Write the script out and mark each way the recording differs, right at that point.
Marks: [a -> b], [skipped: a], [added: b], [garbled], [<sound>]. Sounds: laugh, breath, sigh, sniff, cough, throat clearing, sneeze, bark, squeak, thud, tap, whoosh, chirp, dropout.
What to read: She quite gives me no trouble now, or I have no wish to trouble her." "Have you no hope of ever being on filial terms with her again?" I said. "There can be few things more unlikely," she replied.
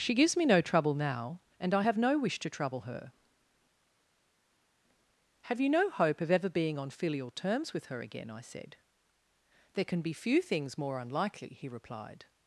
She [skipped: quite] gives me no trouble now, [or -> and] I have no wish to trouble her." "Have you no hope of ever being on filial terms with her again?" I said. "There can be few things more unlikely," [she -> he] replied.